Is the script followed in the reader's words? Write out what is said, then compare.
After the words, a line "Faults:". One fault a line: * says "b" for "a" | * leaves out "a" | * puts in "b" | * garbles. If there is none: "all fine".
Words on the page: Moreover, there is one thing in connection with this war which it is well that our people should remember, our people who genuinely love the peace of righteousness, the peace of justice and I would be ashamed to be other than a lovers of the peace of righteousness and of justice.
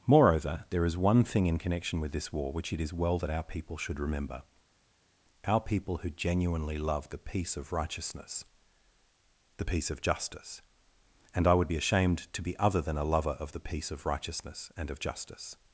Moreover, there is one thing in connection with this war which it is well that our people should remember, our people who genuinely love the peace of righteousness, the peace of justice and I would be ashamed to be other than a lover of the peace of righteousness and of justice.
Faults:
* says "lover" for "lovers"